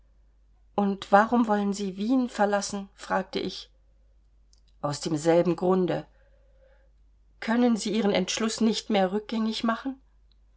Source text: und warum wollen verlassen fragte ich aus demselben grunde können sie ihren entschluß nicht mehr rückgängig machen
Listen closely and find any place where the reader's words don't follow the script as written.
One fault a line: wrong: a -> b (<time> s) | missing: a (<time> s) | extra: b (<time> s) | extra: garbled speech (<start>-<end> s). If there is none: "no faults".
extra: sie wien (1.7 s)